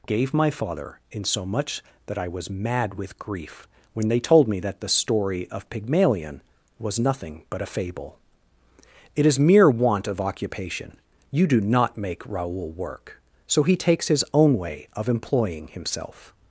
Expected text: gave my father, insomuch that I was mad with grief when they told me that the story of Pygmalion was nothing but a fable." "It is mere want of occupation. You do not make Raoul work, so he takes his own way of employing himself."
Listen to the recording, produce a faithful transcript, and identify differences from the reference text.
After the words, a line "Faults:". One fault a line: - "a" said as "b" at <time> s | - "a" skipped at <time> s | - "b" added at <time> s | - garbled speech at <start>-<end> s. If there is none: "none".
gave my father, insomuch that I was mad with grief when they told me that the story of Pygmalion was nothing but a fable." "It is mere want of occupation. You do not make Raoul work, so he takes his own way of employing himself."
Faults:
none